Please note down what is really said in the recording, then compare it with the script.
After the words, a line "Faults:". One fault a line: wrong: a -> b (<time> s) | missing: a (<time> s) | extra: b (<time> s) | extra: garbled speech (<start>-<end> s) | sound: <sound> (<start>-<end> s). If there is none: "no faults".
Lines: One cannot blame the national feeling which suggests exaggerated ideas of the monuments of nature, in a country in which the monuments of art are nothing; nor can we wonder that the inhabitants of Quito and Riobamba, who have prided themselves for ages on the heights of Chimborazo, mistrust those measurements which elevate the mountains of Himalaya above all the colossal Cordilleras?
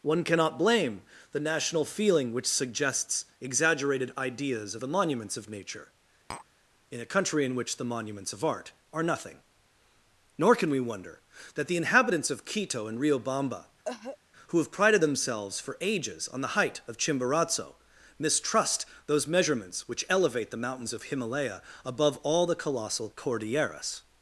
One cannot blame the national feeling which suggests exaggerated ideas of the monuments of nature, in a country in which the monuments of art are nothing; nor can we wonder that the inhabitants of Quito and Riobamba, who have prided themselves for ages on the height of Chimborazo, mistrust those measurements which elevate the mountains of Himalaya above all the colossal Cordilleras?
Faults:
sound: tap (6.3-6.5 s)
sound: cough (13.8-14.2 s)
wrong: heights -> height (16.6 s)